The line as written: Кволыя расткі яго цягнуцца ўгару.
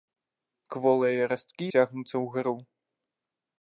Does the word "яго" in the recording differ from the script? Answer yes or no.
yes